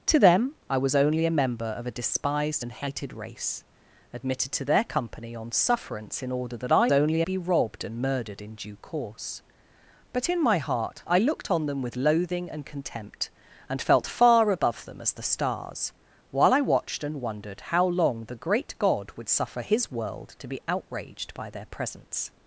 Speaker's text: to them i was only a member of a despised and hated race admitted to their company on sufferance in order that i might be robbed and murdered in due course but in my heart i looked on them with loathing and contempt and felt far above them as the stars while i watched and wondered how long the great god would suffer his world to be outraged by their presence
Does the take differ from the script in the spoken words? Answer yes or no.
yes